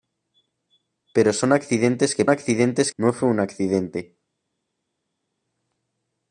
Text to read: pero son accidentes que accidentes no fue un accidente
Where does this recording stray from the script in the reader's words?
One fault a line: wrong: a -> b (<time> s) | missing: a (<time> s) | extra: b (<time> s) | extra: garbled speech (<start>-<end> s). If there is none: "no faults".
no faults